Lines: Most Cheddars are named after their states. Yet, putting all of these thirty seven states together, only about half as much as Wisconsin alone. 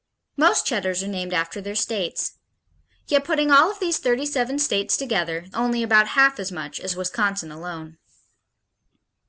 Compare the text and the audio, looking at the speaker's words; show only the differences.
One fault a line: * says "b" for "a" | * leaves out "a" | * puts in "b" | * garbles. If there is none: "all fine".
all fine